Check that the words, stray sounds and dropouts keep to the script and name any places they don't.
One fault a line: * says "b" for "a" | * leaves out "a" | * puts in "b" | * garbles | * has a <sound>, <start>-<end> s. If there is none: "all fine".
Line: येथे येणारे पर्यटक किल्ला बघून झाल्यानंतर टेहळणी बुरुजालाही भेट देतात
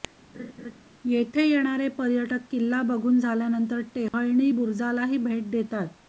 * has a laugh, 0.3-0.8 s
* has a dropout, 4.1-4.1 s